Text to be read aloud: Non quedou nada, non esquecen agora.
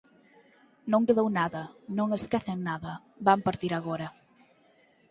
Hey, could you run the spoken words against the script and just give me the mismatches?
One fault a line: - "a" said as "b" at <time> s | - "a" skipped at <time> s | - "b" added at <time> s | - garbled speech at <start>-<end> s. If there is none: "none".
- "nada van partir" added at 2.7 s